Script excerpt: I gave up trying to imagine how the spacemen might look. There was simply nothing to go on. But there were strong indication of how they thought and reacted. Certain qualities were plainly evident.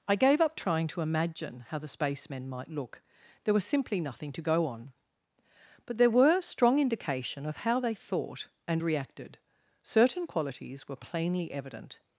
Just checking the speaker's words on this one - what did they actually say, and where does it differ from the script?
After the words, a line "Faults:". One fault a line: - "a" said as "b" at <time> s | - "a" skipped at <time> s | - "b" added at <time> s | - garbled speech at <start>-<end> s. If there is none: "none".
I gave up trying to imagine how the spacemen might look. There was simply nothing to go on. But there were strong indication of how they thought and reacted. Certain qualities were plainly evident.
Faults:
none